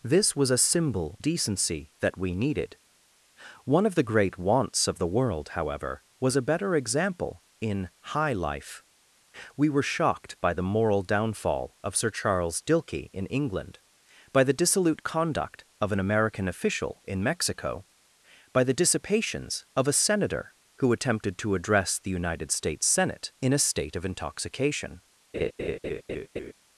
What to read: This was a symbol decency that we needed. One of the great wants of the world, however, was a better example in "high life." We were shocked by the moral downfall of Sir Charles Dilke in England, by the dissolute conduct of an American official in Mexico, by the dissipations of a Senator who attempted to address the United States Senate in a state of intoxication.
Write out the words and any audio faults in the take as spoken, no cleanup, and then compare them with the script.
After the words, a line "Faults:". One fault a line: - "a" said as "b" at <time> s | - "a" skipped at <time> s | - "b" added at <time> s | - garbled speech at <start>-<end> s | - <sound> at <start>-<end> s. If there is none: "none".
This was a symbol decency that we needed. One of the great wants of the world, however, was a better example in "high life." We were shocked by the moral downfall of Sir Charles Dilke in England, by the dissolute conduct of an American official in Mexico, by the dissipations of a Senator who attempted to address the United States Senate in a state of intoxication.
Faults:
- laugh at 25.3-26.5 s